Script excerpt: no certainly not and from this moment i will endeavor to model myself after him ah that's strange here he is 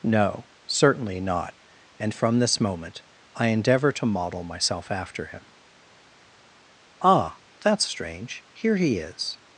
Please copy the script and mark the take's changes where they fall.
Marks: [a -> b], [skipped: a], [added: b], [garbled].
no certainly not and from this moment i [skipped: will] endeavor to model myself after him ah that's strange here he is